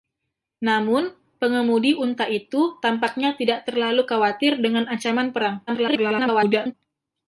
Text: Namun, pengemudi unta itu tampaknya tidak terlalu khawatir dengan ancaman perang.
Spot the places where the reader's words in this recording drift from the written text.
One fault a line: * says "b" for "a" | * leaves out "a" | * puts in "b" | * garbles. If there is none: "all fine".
* garbles